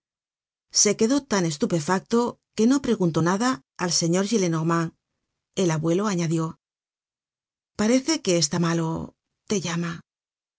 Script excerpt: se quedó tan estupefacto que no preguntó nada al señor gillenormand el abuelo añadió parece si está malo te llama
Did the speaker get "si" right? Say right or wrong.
wrong